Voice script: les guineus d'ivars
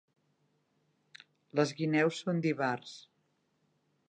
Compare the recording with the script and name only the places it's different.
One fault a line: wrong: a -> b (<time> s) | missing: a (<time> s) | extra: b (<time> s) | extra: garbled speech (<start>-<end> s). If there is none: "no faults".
extra: són (2.2 s)